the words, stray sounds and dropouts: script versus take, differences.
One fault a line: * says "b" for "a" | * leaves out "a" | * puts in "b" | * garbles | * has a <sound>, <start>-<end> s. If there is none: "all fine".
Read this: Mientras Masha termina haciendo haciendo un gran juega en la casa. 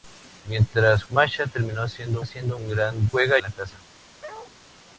* has a bark, 4.2-4.5 s